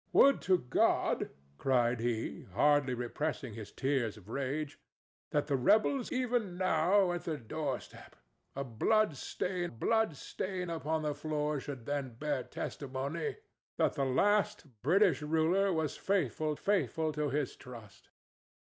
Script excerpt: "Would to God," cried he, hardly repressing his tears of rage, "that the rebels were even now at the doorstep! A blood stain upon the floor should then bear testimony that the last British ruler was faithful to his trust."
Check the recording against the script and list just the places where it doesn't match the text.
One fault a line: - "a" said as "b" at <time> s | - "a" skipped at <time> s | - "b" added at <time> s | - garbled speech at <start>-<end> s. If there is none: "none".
- "were" skipped at 6.1 s
- "blood stain" added at 9.7 s
- "faithful" added at 16.5 s